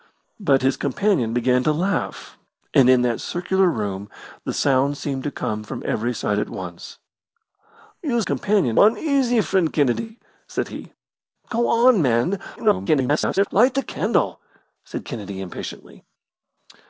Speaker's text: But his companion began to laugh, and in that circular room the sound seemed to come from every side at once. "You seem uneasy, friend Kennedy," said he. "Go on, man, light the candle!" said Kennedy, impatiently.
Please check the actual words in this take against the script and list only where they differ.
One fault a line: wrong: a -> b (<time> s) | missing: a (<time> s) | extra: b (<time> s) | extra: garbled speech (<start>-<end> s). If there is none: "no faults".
wrong: seem -> companion (8.2 s)
extra: garbled speech (12.6-13.5 s)